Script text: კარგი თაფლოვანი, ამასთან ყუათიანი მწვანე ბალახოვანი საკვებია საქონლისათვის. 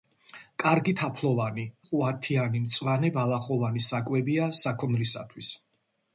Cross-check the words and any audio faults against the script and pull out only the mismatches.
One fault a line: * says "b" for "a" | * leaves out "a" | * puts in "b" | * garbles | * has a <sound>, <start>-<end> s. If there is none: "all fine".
* leaves out "ამასთან"